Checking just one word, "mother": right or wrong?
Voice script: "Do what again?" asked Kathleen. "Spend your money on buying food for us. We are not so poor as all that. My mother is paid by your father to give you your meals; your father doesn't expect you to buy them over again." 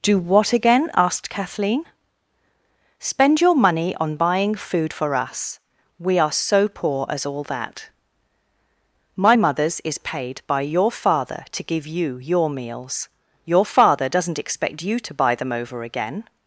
wrong